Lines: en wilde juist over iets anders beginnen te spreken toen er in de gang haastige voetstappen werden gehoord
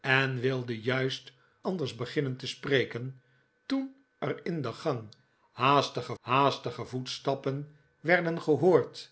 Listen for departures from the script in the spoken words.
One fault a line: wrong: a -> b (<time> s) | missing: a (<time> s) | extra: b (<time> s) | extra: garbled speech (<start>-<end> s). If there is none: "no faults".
missing: over iets (1.3 s)
extra: haastige (6.2 s)